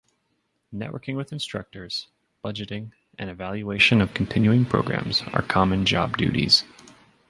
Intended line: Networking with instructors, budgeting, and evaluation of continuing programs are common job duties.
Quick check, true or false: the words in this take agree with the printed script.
true